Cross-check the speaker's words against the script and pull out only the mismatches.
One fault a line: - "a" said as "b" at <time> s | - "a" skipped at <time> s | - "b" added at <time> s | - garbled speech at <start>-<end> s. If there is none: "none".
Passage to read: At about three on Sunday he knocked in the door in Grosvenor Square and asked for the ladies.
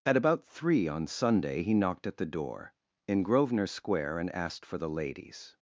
- "in" said as "at" at 2.1 s